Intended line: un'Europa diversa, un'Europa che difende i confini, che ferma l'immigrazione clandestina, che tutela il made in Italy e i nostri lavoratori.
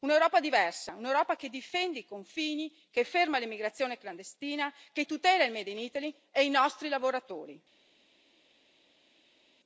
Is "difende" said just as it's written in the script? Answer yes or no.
yes